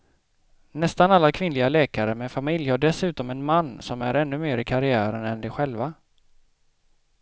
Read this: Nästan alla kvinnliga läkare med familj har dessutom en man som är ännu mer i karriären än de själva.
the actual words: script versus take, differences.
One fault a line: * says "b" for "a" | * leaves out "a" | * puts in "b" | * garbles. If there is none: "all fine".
all fine